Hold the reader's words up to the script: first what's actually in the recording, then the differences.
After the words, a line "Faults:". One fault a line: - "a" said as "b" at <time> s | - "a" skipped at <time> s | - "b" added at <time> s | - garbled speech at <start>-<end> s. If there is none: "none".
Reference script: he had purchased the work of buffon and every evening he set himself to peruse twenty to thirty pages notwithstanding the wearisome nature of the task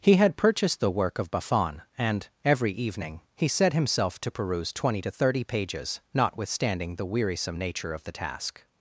he had purchased the work of buffon and every evening he set himself to peruse twenty to thirty pages notwithstanding the wearisome nature of the task
Faults:
none